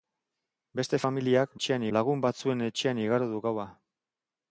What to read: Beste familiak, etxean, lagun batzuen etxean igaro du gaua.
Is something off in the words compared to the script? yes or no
no